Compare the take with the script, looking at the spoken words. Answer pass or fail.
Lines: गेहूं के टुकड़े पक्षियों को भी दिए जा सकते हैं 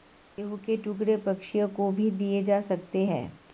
pass